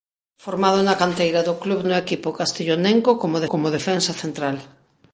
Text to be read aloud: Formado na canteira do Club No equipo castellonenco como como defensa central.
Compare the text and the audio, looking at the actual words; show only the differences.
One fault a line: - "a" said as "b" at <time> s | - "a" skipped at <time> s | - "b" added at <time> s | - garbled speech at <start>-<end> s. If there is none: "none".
none